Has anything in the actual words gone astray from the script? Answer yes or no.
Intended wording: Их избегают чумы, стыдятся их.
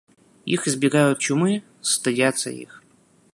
no